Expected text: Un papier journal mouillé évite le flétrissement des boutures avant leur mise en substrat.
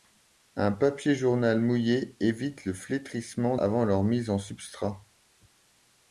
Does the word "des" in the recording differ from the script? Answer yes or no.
yes